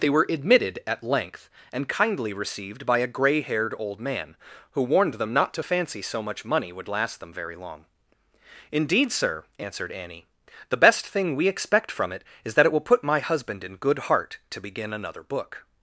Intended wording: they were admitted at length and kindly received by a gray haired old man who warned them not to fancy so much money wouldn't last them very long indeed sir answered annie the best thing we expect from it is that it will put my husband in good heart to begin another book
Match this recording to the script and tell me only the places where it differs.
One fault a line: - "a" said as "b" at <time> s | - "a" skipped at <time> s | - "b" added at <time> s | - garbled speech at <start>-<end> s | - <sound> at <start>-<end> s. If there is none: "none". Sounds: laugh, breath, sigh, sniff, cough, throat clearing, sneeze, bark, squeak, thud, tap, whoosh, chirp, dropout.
- "wouldn't" said as "would" at 6.7 s